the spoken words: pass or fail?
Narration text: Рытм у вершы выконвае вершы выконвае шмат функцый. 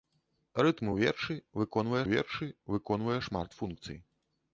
pass